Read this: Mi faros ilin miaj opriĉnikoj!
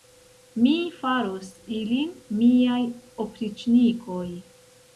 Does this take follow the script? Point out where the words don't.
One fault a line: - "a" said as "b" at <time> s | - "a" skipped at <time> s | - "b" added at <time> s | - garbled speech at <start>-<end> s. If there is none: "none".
none